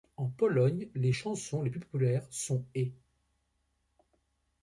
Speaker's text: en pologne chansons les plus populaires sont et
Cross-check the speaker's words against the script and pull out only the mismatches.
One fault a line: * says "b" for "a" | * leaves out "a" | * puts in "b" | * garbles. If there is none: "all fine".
* puts in "les"